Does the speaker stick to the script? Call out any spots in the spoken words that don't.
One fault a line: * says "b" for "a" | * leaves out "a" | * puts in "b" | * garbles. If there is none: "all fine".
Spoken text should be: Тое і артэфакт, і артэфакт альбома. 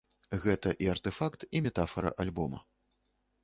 * says "Гэта" for "Тое"
* says "метафара" for "артэфакт"